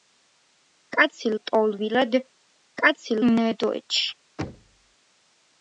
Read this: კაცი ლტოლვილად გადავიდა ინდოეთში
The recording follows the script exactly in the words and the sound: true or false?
false